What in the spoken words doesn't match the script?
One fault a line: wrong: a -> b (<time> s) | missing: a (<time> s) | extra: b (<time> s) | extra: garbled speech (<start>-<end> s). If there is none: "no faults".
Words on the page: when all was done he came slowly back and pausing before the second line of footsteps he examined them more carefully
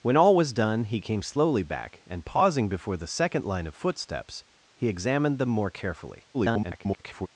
extra: garbled speech (6.3-7.3 s)